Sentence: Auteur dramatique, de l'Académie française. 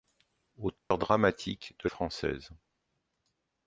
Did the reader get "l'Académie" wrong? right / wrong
wrong